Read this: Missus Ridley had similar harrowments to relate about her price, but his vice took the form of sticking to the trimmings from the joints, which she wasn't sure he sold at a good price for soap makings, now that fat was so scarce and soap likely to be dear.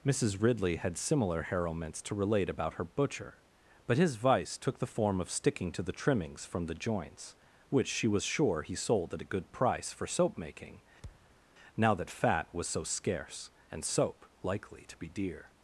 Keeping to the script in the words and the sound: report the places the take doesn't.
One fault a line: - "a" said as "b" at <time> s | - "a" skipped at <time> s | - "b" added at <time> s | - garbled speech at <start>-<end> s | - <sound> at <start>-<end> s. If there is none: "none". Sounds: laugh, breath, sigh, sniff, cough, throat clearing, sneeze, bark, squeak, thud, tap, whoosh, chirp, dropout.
- "price" said as "butcher" at 2.8 s
- "wasn't" said as "was" at 8.1 s
- "makings" said as "making" at 10.4 s
- thud at 11.0-11.4 s